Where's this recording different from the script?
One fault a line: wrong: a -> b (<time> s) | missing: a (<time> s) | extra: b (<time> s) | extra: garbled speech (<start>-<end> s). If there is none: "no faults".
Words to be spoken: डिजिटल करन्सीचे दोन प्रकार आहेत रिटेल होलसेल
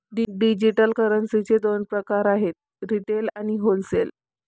extra: आणि (3.4 s)